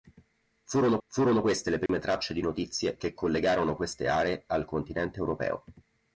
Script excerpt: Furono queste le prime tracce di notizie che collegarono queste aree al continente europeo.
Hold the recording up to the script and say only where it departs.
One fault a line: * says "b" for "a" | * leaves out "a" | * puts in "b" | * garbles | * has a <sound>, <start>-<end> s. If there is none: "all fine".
* puts in "furono"
* has a dropout, 1.9-1.9 s